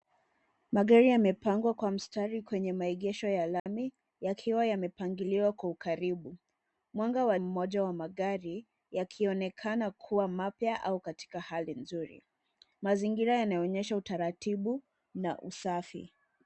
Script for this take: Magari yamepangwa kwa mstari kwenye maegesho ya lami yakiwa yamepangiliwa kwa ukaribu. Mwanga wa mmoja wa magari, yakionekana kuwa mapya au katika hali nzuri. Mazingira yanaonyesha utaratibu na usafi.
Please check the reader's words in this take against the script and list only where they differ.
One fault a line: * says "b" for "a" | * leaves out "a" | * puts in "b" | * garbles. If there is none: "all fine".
all fine